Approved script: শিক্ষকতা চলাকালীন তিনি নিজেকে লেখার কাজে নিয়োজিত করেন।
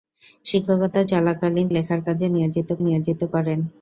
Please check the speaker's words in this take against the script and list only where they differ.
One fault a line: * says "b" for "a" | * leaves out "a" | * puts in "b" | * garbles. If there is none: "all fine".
* leaves out "তিনি নিজেকে"
* puts in "নিয়োজিত"